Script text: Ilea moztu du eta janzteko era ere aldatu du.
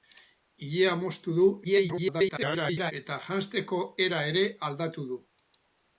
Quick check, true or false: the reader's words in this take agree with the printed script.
false